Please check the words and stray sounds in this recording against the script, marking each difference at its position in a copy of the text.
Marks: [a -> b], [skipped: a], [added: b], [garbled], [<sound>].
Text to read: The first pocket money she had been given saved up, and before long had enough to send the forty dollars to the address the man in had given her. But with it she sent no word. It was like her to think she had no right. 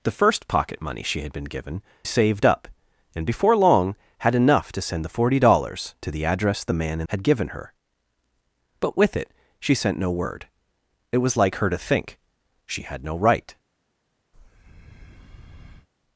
The first pocket money she had been given saved up, and before long had enough to send the forty dollars to the address the man in had given her. But with it she sent no word. It was like her to think she had no right. [breath]